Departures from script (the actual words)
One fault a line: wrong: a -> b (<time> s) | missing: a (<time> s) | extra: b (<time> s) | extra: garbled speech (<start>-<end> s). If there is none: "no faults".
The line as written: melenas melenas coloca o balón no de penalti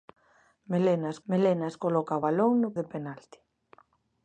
no faults